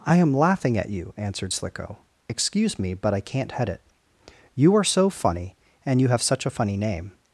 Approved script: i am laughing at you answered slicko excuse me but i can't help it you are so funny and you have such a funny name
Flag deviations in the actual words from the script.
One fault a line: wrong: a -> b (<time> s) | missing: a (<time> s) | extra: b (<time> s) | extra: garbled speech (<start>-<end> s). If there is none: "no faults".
wrong: help -> head (3.5 s)